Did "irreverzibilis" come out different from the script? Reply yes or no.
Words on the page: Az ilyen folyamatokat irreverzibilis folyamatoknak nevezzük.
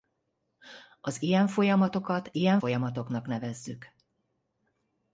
yes